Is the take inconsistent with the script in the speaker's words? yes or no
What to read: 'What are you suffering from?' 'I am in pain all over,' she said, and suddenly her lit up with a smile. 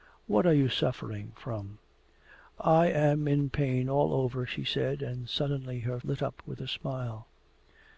no